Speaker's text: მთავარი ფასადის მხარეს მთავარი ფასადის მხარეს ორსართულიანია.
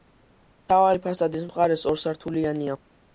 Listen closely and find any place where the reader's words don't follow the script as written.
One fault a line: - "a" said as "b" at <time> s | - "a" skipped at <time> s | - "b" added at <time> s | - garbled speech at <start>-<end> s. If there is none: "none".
- "მთავარი ფასადის მხარეს" skipped at 1.8 s